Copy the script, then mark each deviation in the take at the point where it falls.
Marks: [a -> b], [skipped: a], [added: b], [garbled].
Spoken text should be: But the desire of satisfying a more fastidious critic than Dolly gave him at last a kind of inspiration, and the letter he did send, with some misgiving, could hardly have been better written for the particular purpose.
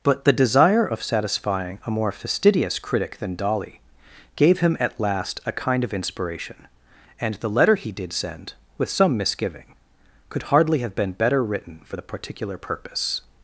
But the desire of satisfying a more fastidious critic than Dolly gave him at last a kind of inspiration, and the letter he did send, with some misgiving, could hardly have been better written for the particular purpose.